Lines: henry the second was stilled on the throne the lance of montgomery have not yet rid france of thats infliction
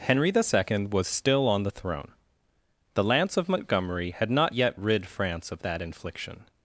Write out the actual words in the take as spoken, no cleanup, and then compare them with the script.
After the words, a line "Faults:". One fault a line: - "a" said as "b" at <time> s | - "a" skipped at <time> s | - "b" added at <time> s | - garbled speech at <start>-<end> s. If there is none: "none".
henry the second was still on the throne the lance of montgomery had not yet rid france of that infliction
Faults:
- "stilled" said as "still" at 1.1 s
- "have" said as "had" at 4.1 s
- "thats" said as "that" at 5.6 s